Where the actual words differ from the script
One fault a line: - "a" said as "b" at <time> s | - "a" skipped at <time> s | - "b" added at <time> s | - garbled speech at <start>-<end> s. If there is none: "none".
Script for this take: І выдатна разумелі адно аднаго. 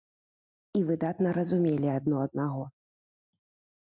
none